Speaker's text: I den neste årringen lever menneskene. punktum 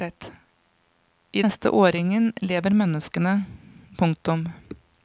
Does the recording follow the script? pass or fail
fail